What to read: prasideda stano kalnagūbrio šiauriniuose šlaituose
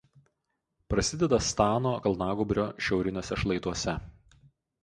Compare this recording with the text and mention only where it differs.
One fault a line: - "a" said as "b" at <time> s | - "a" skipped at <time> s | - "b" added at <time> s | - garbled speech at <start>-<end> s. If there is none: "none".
none